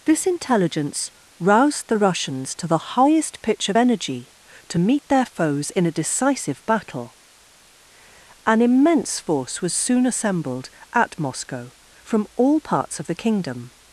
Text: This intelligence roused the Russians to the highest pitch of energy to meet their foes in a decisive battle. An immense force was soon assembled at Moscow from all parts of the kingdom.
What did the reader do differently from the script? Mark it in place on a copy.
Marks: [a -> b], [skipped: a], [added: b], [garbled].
This intelligence roused the Russians to the highest pitch of energy to meet their foes in a decisive battle. An immense force was soon assembled at Moscow from all parts of the kingdom.